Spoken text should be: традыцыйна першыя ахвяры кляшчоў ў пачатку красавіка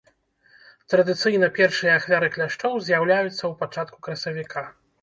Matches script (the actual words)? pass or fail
fail